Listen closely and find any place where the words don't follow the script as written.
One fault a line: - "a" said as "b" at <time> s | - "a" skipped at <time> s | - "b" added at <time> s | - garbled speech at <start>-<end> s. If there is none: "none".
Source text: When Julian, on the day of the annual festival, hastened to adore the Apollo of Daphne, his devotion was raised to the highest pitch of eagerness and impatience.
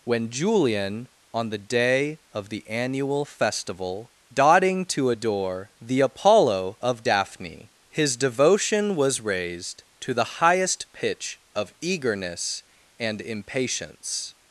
- "hastened" said as "dotting" at 4.3 s